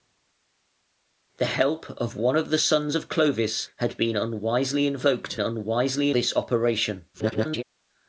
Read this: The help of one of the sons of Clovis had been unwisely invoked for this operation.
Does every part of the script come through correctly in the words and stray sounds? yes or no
no